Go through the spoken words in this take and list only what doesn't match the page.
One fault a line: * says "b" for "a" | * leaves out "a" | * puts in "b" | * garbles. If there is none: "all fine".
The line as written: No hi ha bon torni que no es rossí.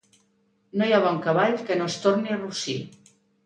* says "cavall" for "torni"
* puts in "torni"